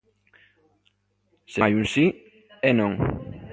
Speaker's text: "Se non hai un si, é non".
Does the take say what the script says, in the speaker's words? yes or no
no